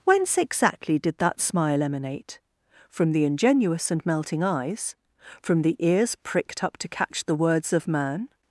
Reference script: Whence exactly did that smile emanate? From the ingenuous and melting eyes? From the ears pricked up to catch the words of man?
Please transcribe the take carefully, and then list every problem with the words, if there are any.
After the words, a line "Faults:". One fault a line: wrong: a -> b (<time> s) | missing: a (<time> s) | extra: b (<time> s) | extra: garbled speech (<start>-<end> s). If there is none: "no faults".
Whence exactly did that smile emanate? From the ingenuous and melting eyes? From the ears pricked up to catch the words of man?
Faults:
no faults